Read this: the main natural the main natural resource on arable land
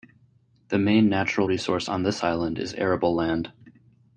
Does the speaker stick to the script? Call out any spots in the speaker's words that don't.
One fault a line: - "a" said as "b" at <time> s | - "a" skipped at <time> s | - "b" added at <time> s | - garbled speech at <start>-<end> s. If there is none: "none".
- "the main natural resource on" said as "resource on this island is" at 1.4 s